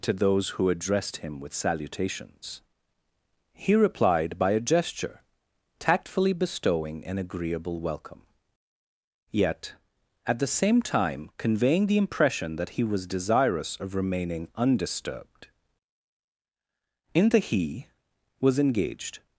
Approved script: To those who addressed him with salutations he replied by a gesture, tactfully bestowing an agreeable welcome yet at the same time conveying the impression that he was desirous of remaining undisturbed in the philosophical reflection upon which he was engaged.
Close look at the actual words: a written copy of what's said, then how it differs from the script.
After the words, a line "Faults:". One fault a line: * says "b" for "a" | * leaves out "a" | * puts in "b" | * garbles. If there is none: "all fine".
To those who addressed him with salutations he replied by a gesture, tactfully bestowing an agreeable welcome yet at the same time conveying the impression that he was desirous of remaining undisturbed in the he was engaged.
Faults:
* leaves out "philosophical reflection upon which"